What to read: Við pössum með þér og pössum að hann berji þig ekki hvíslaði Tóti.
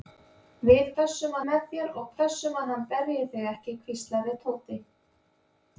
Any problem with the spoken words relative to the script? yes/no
no